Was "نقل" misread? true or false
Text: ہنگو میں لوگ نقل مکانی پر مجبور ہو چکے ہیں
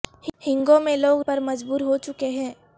true